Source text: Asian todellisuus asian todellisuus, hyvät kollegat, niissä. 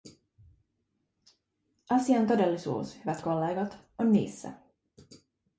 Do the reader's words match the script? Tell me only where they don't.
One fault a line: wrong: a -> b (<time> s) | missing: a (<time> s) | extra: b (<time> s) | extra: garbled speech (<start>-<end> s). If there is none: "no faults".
missing: asian todellisuus (3.0 s)
extra: on (4.0 s)